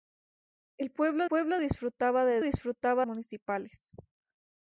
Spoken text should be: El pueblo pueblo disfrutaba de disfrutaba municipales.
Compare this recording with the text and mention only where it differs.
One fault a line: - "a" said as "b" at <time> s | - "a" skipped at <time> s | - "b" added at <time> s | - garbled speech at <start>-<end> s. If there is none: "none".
none